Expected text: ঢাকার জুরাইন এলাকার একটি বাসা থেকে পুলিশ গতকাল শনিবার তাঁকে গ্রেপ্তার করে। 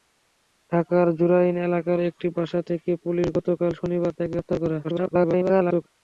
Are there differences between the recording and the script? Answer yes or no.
yes